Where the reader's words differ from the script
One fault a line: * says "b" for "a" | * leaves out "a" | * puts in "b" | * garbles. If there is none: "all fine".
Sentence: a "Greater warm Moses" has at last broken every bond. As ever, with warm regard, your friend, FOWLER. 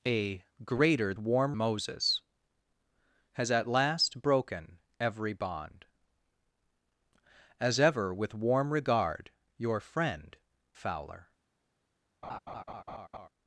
all fine